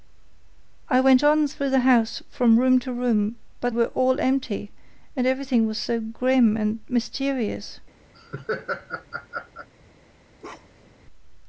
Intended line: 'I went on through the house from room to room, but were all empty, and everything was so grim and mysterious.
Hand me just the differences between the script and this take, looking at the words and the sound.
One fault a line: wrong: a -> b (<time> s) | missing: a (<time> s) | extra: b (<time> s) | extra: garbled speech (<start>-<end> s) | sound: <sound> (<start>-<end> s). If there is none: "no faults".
sound: laugh (8.1-9.7 s)
sound: bark (10.4-11.0 s)